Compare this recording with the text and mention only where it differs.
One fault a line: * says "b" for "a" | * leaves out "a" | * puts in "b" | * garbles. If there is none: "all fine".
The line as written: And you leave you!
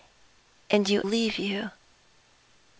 all fine